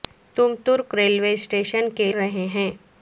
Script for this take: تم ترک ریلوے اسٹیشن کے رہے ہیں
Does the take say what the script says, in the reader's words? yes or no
yes